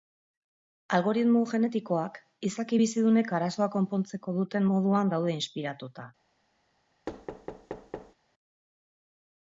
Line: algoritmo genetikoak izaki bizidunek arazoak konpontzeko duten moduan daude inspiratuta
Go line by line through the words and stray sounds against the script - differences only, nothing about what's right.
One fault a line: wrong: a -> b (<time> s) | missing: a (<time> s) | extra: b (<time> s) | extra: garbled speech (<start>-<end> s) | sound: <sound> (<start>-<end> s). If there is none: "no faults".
sound: thud (7.1-8.1 s)